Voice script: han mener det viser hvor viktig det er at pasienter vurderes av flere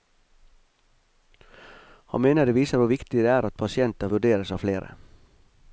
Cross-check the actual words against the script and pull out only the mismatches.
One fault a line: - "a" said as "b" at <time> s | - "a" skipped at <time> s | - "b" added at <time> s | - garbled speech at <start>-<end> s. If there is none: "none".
none